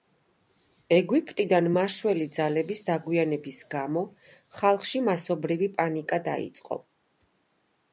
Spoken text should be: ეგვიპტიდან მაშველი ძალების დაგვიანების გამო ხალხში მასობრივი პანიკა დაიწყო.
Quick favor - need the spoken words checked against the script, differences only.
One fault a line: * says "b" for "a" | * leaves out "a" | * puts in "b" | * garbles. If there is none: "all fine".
all fine